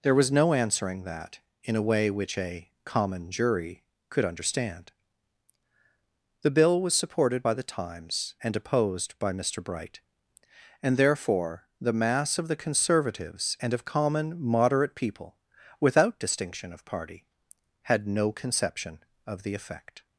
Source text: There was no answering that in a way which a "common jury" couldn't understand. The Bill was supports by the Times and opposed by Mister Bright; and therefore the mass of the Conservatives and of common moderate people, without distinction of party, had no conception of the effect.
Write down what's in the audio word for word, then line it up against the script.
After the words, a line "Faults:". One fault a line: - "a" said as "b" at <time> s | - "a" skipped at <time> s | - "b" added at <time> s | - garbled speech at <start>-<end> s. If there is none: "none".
There was no answering that in a way which a "common jury" could understand. The Bill was supported by the Times and opposed by Mister Bright; and therefore the mass of the Conservatives and of common moderate people, without distinction of party, had no conception of the effect.
Faults:
- "couldn't" said as "could" at 4.1 s
- "supports" said as "supported" at 6.9 s